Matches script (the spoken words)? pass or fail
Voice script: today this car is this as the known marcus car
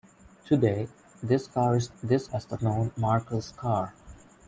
pass